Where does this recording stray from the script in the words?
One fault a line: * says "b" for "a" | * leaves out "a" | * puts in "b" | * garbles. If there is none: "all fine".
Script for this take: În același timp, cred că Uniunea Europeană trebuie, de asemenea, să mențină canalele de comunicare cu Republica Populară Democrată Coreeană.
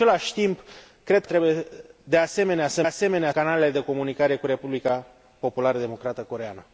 * leaves out "că Uniunea Europeană"
* says "asemenea" for "mențină"